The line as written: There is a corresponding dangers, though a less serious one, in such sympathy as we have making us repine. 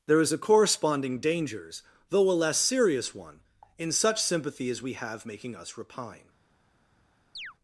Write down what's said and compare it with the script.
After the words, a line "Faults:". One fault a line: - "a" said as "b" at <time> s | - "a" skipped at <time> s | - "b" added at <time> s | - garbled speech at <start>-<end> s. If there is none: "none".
There is a corresponding dangers, though a less serious one, in such sympathy as we have making us repine.
Faults:
none